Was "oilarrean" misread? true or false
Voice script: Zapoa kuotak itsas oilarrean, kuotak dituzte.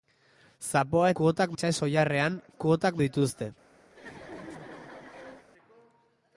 false